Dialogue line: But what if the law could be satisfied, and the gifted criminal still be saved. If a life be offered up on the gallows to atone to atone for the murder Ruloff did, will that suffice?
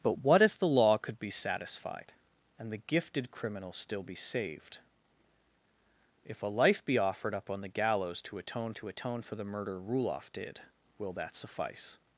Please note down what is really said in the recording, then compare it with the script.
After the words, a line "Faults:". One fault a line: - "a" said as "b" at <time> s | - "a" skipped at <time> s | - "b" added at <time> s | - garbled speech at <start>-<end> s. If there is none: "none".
But what if the law could be satisfied, and the gifted criminal still be saved. If a life be offered up on the gallows to atone to atone for the murder Ruloff did, will that suffice?
Faults:
none